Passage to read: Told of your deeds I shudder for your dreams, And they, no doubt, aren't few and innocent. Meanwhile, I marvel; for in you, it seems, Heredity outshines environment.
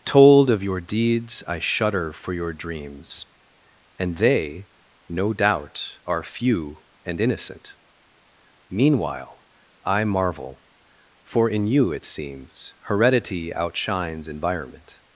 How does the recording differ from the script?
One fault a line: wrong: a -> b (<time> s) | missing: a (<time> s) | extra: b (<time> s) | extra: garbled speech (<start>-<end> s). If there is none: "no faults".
wrong: aren't -> are (6.1 s)